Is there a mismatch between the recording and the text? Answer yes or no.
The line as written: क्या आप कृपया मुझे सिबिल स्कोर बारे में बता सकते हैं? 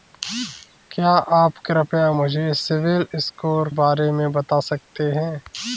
no